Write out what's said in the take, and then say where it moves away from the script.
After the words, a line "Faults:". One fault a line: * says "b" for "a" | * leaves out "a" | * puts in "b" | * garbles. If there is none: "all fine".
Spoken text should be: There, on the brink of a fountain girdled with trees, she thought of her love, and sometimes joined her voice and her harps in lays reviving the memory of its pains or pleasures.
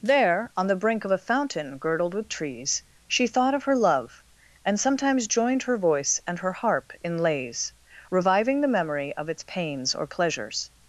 There, on the brink of a fountain girdled with trees, she thought of her love, and sometimes joined her voice and her harp in lays reviving the memory of its pains or pleasures.
Faults:
* says "harp" for "harps"